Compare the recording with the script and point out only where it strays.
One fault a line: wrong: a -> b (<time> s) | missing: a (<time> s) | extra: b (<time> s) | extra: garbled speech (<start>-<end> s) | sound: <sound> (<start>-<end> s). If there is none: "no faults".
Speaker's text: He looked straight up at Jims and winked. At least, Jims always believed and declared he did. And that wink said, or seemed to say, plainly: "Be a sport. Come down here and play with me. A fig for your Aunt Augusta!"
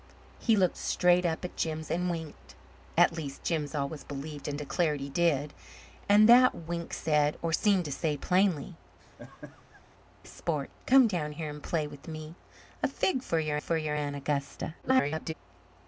missing: Be (8.7 s)
sound: laugh (9.0-9.8 s)
extra: for your (13.6 s)
extra: garbled speech (14.8-15.3 s)